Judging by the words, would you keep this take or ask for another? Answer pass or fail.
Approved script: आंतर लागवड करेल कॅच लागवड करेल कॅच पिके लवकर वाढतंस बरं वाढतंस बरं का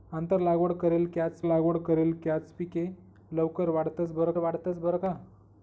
pass